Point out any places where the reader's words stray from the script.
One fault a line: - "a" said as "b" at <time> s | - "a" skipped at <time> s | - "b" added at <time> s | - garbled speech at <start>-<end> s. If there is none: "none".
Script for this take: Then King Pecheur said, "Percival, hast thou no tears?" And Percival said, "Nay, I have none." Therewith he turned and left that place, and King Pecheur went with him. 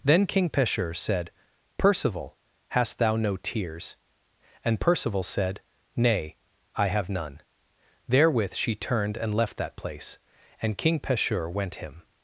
- "he" said as "she" at 8.5 s
- "with" skipped at 11.8 s